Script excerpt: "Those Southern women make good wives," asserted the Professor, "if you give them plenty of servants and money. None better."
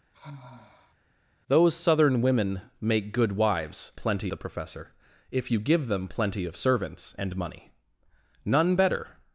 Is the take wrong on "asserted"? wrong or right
wrong